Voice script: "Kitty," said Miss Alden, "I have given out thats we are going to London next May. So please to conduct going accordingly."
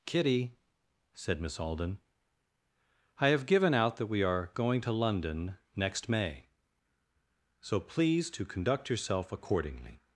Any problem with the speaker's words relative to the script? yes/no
yes